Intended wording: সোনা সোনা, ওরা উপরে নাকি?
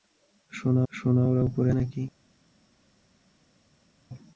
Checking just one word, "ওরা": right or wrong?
right